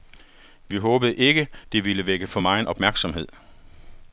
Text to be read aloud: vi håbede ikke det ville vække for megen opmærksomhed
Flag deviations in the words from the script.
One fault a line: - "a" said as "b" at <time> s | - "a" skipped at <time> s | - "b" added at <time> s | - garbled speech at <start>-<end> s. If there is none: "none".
none